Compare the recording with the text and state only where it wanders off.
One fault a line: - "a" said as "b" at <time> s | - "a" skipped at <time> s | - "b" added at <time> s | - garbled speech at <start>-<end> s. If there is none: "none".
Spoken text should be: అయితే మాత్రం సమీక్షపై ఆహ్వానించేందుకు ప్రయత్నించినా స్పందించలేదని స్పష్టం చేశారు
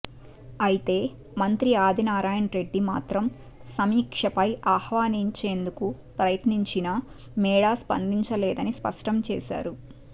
- "మంత్రి ఆదినారాయణరెడ్డి" added at 1.4 s
- "మేడా" added at 7.4 s